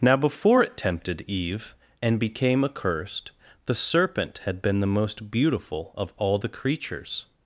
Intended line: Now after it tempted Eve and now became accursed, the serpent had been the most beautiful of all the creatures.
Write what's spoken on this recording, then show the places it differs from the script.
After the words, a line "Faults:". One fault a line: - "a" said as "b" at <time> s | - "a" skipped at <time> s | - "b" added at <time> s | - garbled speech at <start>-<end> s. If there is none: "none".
Now before it tempted Eve and became accursed, the serpent had been the most beautiful of all the creatures.
Faults:
- "after" said as "before" at 0.2 s
- "now" skipped at 2.2 s